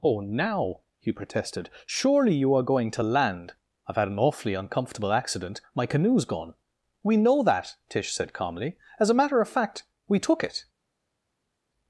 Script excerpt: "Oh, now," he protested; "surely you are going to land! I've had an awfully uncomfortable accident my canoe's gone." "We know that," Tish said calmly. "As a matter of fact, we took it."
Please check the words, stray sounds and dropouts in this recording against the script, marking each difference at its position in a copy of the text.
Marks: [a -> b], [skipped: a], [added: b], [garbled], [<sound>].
"Oh, now," he protested; "surely you are going to land! I've had an awfully uncomfortable accident my canoe's gone." "We know that," Tish said calmly. "As a matter of fact, we took it."